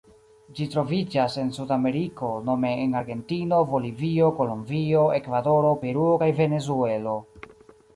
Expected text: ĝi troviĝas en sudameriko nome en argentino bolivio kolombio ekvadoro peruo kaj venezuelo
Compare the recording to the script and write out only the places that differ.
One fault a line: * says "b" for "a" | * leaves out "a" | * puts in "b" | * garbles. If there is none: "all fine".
all fine